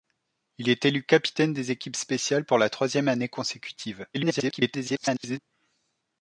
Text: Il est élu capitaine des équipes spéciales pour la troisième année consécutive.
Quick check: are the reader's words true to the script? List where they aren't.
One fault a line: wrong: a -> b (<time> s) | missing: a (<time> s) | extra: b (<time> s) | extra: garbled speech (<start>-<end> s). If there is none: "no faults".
extra: garbled speech (4.1-5.4 s)